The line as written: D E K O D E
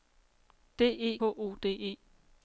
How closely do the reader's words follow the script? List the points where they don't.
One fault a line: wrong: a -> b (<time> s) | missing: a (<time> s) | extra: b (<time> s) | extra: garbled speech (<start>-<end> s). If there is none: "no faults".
missing: K (1.2 s)